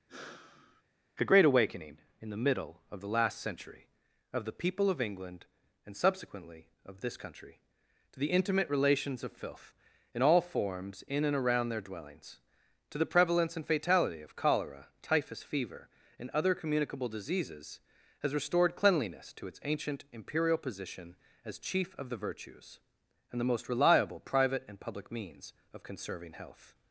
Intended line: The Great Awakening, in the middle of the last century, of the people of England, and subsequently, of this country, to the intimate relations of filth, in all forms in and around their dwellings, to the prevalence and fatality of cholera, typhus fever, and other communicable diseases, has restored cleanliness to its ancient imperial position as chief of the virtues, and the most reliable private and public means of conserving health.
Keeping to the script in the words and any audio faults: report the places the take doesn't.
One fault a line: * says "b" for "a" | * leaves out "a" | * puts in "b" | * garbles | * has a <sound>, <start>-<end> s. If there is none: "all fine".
* has a sigh, 0.1-0.8 s